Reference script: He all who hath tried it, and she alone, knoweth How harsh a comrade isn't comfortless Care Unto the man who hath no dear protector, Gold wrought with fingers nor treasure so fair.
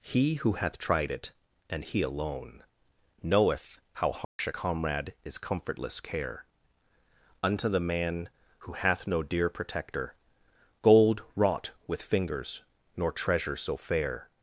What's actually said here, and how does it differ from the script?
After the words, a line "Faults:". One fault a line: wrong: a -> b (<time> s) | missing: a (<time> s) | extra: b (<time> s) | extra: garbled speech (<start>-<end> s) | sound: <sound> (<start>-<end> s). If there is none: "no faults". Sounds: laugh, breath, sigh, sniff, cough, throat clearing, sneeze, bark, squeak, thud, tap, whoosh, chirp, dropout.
He who hath tried it, and he alone, knoweth How harsh a comrade is comfortless Care Unto the man who hath no dear protector, Gold wrought with fingers nor treasure so fair.
Faults:
missing: all (0.3 s)
wrong: she -> he (1.9 s)
sound: dropout (4.2-4.4 s)
wrong: isn't -> is (5.2 s)